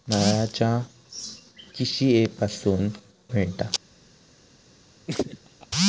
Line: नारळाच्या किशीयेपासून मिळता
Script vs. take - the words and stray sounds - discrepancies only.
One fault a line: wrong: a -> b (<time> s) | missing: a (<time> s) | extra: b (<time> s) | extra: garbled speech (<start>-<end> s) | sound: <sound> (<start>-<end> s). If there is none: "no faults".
sound: laugh (5.1-5.7 s)